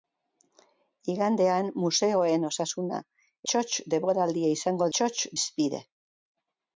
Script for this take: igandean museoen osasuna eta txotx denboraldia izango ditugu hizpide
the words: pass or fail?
fail